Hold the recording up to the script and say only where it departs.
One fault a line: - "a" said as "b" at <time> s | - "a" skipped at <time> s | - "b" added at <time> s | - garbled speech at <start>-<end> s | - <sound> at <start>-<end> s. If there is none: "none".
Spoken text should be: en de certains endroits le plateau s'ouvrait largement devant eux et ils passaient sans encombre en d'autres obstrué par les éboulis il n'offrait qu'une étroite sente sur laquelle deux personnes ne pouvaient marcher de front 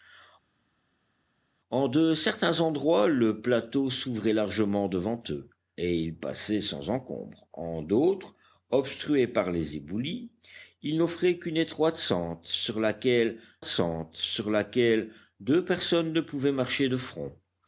- "sente sur laquelle" added at 13.6 s